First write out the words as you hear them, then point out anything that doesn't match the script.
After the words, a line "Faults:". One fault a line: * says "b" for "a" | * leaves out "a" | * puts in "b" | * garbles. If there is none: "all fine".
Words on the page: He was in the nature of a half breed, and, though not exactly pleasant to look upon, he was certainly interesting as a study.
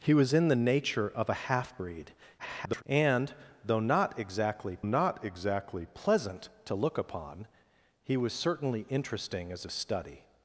He was in the nature of a half breed, [garbled] and, though not exactly not exactly pleasant to look upon, he was certainly interesting as a study.
Faults:
* garbles
* puts in "not exactly"